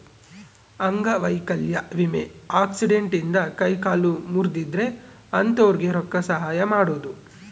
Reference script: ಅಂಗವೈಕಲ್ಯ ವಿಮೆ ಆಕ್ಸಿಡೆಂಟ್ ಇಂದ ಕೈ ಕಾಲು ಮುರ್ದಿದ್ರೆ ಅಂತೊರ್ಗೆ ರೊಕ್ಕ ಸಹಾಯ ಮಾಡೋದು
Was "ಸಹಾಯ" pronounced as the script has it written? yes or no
yes